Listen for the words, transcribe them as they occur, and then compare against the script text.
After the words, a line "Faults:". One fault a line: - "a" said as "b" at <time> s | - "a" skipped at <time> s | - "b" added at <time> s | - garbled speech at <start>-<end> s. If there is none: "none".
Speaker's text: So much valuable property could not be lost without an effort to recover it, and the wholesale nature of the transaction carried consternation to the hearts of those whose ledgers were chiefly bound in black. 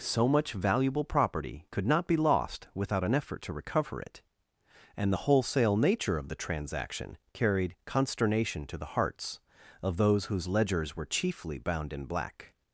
So much valuable property could not be lost without an effort to recover it, and the wholesale nature of the transaction carried consternation to the hearts of those whose ledgers were chiefly bound in black.
Faults:
none